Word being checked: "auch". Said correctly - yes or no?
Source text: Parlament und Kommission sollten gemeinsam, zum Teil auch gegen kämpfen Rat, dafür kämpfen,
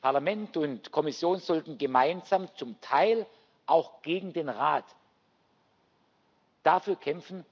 yes